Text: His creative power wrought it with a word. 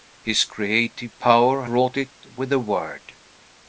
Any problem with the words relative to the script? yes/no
no